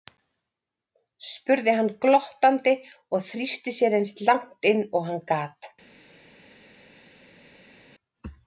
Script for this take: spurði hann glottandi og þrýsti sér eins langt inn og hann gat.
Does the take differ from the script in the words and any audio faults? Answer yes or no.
no